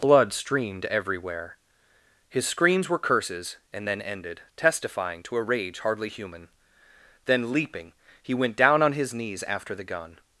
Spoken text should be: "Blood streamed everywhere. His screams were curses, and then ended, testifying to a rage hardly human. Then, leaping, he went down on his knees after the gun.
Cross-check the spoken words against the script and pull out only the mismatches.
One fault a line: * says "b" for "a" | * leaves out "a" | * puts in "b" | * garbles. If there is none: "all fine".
all fine